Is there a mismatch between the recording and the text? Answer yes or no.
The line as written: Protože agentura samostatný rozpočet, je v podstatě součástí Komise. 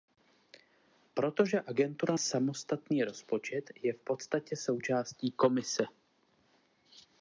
no